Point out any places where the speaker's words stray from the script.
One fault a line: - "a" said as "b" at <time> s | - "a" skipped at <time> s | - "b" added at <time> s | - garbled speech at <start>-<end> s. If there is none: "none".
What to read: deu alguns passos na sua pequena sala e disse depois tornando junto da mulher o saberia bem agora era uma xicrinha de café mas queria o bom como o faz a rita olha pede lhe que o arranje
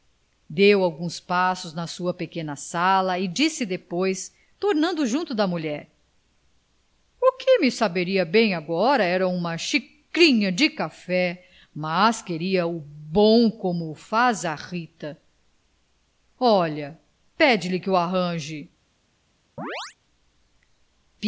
- "que me" added at 7.3 s